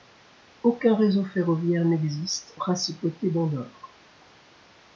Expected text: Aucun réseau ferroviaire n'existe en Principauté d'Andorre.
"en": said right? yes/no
no